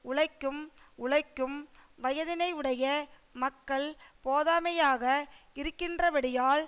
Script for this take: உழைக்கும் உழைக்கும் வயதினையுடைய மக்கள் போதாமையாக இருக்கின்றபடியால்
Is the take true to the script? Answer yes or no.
yes